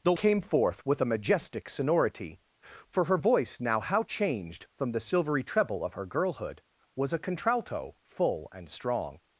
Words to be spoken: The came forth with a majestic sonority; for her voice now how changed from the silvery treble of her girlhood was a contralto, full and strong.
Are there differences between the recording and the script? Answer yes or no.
no